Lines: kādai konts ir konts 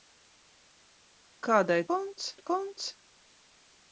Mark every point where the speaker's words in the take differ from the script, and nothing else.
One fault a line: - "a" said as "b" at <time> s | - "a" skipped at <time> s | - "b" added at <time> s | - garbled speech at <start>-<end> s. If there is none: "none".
none